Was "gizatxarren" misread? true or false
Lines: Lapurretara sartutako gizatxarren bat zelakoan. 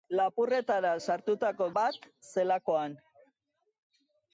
true